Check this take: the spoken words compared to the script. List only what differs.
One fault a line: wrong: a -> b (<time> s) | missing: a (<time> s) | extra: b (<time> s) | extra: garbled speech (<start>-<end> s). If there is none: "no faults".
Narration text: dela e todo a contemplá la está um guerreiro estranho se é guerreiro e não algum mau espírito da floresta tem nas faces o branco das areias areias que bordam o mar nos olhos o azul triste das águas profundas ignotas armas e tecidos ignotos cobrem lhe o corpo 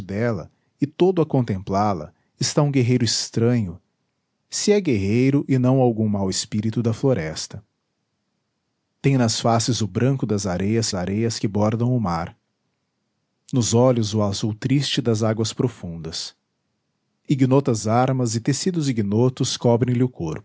no faults